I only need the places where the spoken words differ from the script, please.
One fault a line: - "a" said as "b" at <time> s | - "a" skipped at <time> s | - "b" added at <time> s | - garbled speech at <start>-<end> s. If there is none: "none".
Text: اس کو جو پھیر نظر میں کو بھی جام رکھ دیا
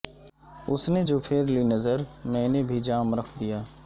- "کو" said as "نے" at 0.9 s
- "لی" added at 1.4 s
- "کو" said as "نے" at 2.5 s